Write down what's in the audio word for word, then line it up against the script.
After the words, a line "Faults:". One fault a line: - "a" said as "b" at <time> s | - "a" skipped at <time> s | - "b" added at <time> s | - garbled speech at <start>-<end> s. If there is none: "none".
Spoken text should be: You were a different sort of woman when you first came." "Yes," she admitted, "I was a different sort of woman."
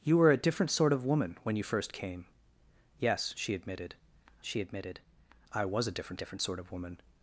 You were a different sort of woman when you first came." "Yes," she admitted she admitted, "I was a different different sort of woman."
Faults:
- "she admitted" added at 4.4 s
- "different" added at 6.1 s